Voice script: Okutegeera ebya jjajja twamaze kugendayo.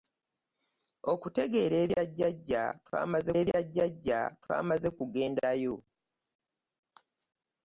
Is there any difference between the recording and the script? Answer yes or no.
yes